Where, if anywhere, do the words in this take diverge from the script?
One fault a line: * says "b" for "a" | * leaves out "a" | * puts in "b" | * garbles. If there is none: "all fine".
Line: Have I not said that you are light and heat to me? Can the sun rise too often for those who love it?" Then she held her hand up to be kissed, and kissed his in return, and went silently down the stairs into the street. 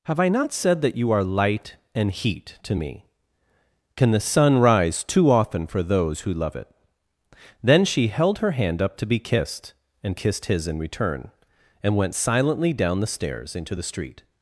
all fine